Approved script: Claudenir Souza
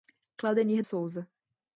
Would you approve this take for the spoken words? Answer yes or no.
yes